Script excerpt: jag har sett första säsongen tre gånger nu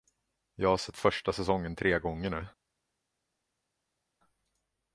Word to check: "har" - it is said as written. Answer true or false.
true